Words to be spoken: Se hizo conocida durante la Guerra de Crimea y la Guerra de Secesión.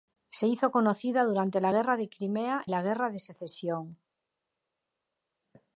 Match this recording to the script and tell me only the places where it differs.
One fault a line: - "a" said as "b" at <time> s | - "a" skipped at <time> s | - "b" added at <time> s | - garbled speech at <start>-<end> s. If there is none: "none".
- "y" skipped at 2.6 s